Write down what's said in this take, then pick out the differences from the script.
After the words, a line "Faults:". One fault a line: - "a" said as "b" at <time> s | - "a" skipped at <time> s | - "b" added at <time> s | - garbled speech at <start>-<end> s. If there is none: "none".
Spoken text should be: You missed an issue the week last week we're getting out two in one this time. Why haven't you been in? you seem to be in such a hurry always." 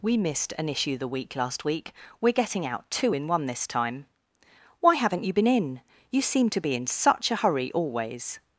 We missed an issue the week last week we're getting out two in one this time. Why haven't you been in? you seem to be in such a hurry always."
Faults:
- "You" said as "We" at 0.0 s